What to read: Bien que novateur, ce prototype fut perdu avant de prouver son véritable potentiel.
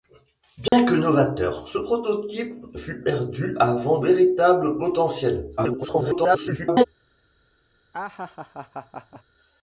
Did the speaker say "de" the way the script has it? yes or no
no